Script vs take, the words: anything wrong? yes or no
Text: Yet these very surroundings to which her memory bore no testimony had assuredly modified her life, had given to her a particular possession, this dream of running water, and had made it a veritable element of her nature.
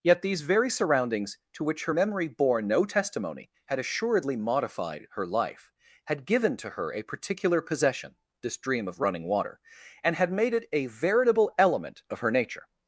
no